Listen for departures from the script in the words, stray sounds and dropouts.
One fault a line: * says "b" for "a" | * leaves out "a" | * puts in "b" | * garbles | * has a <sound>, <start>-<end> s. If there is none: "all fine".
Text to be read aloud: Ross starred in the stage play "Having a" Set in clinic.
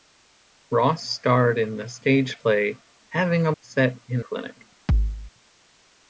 * has a thud, 4.9-5.3 s